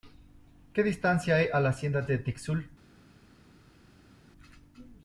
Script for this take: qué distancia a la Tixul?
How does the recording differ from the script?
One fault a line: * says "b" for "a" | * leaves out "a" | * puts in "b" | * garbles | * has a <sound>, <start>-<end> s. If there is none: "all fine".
* puts in "hay"
* puts in "Hacienda de"